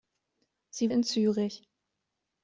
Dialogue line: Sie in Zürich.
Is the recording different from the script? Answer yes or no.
no